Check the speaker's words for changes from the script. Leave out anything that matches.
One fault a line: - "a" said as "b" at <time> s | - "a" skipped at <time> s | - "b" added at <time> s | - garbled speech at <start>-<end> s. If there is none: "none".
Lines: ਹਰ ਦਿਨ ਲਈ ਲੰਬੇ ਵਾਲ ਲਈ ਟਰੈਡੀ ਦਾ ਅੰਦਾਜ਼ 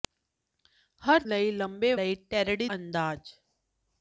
- "ਦਿਨ" skipped at 1.2 s
- "ਵਾਲ" skipped at 1.9 s
- "ਦਾ" skipped at 2.7 s